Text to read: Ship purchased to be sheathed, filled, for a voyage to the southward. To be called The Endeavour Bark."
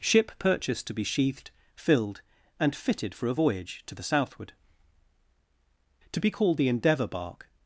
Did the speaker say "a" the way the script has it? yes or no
yes